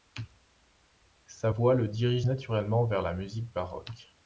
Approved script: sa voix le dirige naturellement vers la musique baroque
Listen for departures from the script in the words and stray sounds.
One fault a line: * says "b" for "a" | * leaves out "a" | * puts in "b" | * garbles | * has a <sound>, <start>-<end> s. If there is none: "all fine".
all fine